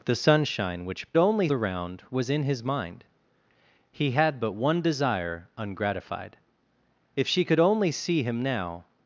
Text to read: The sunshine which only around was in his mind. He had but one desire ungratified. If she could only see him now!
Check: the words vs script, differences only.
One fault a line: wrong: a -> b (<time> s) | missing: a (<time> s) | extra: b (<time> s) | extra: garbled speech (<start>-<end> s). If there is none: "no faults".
no faults